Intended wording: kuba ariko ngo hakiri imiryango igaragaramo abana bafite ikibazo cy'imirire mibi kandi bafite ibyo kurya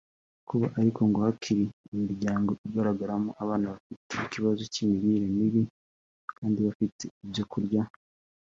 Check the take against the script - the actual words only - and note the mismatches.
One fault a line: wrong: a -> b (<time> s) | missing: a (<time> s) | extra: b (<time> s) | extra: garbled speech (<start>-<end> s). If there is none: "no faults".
no faults